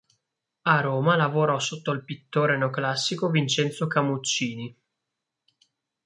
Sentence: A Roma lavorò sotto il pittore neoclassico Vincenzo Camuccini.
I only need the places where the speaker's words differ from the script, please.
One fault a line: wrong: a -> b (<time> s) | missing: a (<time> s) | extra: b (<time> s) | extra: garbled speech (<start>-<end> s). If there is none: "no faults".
no faults